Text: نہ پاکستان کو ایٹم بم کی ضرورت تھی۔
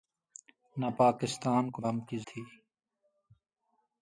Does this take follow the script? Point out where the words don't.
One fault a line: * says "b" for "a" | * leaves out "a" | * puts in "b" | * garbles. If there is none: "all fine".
* leaves out "ایٹم"
* leaves out "ضرورت"